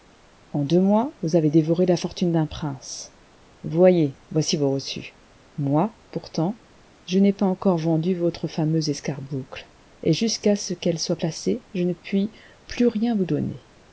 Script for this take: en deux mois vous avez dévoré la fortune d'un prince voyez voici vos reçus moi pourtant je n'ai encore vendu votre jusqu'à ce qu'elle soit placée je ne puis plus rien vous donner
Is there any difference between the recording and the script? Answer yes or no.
yes